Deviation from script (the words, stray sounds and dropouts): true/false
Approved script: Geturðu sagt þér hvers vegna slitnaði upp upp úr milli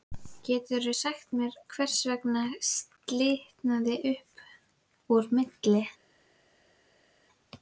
true